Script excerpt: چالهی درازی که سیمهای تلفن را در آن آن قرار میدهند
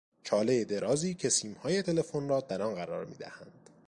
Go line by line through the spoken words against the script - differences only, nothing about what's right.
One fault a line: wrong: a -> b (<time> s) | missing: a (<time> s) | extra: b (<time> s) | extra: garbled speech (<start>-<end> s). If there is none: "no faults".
missing: آن (2.7 s)